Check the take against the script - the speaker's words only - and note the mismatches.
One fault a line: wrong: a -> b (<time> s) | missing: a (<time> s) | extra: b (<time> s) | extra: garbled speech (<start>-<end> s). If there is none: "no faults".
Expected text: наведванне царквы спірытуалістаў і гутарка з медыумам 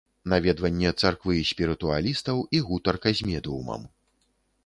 no faults